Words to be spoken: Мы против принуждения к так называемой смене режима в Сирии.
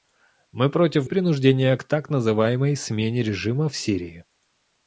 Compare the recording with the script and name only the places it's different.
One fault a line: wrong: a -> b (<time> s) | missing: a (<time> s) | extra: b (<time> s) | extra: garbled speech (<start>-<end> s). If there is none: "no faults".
no faults